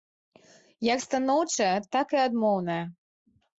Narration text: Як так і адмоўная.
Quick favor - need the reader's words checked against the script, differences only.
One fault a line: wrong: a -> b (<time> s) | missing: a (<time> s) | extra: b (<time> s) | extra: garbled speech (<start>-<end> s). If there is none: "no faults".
extra: станоўчая (1.1 s)